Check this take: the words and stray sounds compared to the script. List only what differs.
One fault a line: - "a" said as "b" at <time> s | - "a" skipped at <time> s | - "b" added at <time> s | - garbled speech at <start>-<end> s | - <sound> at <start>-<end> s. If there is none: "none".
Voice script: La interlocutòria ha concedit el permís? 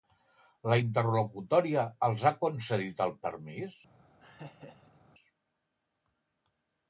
- "els" added at 2.1 s
- laugh at 4.2-5.0 s